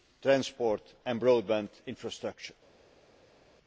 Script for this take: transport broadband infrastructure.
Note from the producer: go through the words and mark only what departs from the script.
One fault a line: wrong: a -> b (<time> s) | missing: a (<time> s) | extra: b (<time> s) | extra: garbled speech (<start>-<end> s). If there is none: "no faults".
extra: and (1.0 s)